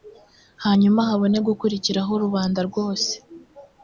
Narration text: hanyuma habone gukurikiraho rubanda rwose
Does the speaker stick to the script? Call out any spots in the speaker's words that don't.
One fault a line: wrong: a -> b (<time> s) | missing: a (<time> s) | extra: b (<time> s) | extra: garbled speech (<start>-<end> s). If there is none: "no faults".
no faults